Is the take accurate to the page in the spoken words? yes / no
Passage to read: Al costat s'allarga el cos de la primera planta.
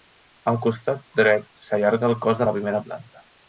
no